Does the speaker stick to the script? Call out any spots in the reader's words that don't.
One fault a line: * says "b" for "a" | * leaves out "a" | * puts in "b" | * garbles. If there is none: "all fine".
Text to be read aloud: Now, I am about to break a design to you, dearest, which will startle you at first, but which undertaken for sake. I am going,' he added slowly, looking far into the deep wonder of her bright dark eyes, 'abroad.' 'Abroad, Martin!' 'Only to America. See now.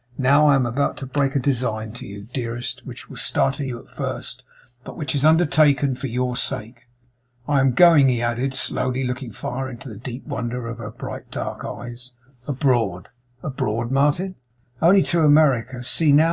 * puts in "is"
* puts in "your"